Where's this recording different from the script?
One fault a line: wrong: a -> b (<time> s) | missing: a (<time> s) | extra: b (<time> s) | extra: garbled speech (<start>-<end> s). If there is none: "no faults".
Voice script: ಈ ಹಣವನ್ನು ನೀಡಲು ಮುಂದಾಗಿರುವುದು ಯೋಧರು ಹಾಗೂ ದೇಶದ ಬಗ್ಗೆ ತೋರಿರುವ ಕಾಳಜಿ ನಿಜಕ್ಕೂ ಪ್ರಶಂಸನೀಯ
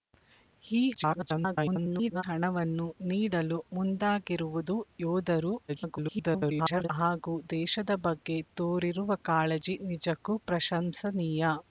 extra: garbled speech (0.9-2.2 s)
extra: garbled speech (5.7-6.9 s)